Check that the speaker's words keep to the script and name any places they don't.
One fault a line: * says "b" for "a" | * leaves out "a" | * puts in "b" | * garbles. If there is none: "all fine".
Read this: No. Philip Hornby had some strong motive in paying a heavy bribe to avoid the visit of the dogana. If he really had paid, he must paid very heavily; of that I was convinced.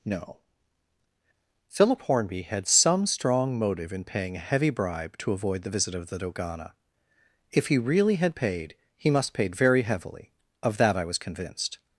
all fine